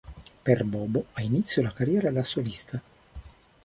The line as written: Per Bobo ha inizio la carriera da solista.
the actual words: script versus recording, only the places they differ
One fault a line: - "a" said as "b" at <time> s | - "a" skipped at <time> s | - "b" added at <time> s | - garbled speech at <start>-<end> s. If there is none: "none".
none